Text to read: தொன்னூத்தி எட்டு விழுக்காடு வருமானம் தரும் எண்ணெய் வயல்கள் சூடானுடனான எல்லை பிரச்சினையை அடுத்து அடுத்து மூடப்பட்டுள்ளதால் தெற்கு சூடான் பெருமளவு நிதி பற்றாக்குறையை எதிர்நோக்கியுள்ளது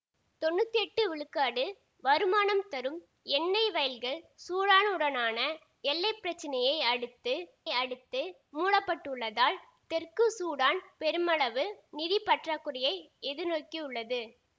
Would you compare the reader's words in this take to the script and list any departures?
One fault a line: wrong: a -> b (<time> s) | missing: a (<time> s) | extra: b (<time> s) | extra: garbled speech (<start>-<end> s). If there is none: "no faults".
no faults